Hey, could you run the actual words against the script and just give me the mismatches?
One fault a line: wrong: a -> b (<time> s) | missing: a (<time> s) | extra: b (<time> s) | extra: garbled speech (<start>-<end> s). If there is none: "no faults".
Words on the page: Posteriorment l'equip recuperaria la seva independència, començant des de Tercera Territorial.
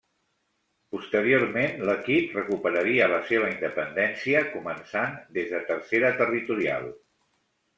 no faults